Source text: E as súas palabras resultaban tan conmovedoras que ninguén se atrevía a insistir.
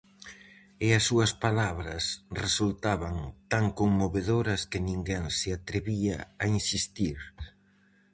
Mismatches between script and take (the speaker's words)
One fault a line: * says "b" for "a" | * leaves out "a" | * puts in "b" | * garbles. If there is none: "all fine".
all fine